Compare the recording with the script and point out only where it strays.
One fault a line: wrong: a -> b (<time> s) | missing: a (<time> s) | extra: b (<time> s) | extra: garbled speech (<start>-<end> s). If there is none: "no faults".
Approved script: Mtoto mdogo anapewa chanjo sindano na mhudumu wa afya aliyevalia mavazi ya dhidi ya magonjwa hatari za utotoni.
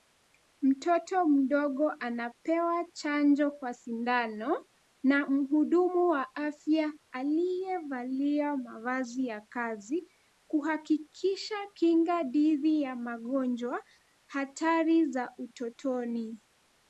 extra: kwa (3.5 s)
extra: kazi kuhakikisha kinga (9.4 s)